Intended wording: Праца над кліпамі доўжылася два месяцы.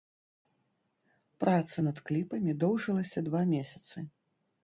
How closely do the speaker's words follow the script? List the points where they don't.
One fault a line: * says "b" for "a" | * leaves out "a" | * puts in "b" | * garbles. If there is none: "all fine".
all fine